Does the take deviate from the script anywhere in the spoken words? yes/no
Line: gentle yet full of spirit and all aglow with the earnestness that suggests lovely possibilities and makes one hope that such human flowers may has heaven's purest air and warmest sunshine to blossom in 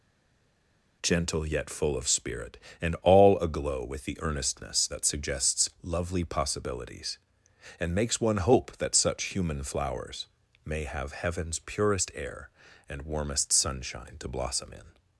yes